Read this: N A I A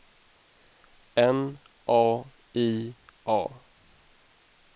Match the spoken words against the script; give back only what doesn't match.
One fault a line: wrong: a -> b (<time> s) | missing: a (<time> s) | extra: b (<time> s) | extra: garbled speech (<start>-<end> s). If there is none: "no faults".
no faults